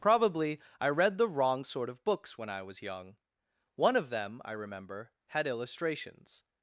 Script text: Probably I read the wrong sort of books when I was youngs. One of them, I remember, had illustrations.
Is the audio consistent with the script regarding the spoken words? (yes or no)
no